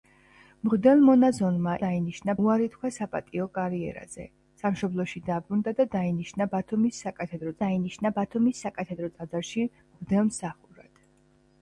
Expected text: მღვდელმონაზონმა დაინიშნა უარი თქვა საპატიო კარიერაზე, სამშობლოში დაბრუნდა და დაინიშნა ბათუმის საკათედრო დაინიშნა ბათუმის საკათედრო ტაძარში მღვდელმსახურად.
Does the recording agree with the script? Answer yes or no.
yes